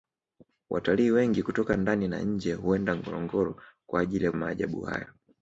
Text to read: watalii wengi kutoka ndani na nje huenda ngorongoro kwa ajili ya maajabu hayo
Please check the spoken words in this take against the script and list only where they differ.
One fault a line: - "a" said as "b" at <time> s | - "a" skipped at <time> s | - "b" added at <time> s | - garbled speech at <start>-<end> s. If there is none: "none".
none